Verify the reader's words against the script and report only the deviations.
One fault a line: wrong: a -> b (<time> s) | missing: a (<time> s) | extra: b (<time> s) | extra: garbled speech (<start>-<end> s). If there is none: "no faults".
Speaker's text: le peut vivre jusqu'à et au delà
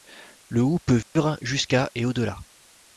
extra: houx (0.6 s)